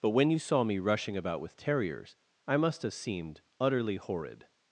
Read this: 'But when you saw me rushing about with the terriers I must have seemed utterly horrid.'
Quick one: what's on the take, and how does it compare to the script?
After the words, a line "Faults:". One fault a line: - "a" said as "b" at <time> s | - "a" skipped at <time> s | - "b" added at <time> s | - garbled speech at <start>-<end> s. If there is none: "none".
'But when you saw me rushing about with terriers I must have seemed utterly horrid.'
Faults:
- "the" skipped at 1.6 s